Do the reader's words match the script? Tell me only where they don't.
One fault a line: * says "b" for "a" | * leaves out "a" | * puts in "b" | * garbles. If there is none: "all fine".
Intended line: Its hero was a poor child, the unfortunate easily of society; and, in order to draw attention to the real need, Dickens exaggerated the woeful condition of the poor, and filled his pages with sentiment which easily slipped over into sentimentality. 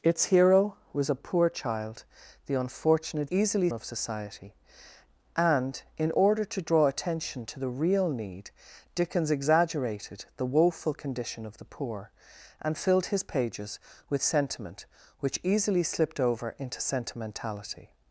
all fine